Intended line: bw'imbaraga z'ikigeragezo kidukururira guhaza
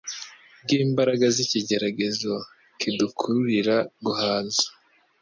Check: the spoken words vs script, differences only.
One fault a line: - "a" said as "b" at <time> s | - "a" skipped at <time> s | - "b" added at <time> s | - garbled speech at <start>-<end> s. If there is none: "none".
none